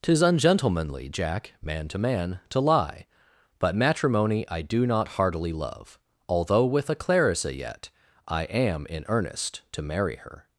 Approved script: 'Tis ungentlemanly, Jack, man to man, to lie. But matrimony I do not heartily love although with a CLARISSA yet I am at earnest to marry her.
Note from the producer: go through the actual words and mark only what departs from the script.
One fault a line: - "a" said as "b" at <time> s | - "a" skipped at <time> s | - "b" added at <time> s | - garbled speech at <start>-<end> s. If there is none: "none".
- "at" said as "in" at 8.9 s